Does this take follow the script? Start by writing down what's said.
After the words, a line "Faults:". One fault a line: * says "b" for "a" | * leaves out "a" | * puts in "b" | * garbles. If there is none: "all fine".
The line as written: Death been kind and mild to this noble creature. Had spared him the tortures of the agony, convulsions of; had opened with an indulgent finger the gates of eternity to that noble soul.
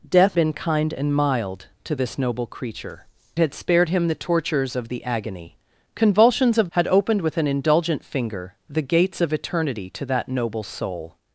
Death been kind and mild to this noble creature. Had spared him the tortures of the agony, convulsions of; had opened with an indulgent finger the gates of eternity to that noble soul.
Faults:
all fine